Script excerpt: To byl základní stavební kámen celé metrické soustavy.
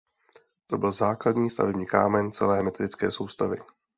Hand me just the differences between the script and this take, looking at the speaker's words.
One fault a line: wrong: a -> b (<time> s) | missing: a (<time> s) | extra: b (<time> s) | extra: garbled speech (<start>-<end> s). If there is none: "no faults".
no faults